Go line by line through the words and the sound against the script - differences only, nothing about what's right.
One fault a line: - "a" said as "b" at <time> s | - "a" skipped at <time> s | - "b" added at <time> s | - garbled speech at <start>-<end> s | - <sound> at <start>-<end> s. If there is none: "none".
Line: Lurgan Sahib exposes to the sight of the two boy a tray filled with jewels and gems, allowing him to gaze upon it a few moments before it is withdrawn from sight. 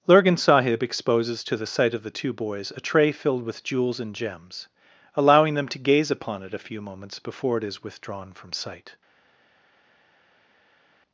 - "boy" said as "boys" at 2.3 s
- "him" said as "them" at 5.6 s